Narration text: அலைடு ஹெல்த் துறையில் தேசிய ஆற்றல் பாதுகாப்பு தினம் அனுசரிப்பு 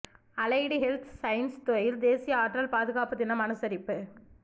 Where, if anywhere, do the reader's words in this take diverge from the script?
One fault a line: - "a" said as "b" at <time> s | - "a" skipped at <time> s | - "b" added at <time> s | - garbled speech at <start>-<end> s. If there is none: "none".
- "சயின்ஸ்" added at 1.2 s